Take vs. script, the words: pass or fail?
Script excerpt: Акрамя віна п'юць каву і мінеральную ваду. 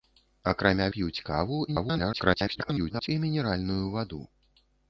fail